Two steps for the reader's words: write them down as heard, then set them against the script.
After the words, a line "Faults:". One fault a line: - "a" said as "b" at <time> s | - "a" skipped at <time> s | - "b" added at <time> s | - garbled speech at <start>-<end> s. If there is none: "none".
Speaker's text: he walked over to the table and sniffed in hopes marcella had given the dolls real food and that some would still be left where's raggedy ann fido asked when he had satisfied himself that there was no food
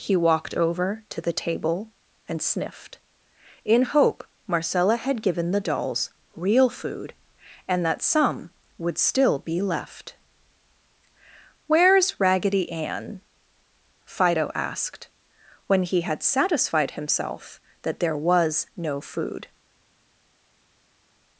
he walked over to the table and sniffed in hope marcella had given the dolls real food and that some would still be left where's raggedy ann fido asked when he had satisfied himself that there was no food
Faults:
- "hopes" said as "hope" at 3.8 s